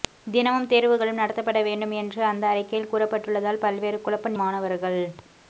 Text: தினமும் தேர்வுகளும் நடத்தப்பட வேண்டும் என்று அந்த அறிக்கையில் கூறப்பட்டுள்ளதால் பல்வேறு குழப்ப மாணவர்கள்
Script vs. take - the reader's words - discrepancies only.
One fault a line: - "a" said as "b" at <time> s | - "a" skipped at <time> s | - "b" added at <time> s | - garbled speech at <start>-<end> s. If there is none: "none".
none